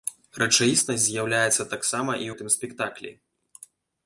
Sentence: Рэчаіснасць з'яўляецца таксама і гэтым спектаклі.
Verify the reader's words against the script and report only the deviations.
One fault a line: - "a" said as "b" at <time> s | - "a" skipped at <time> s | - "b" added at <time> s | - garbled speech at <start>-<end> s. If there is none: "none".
none